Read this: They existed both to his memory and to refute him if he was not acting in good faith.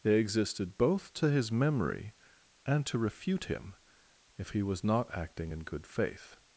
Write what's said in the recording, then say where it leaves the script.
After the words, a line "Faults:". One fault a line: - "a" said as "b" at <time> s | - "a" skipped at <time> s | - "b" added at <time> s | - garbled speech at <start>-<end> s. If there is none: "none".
They existed both to his memory and to refute him if he was not acting in good faith.
Faults:
none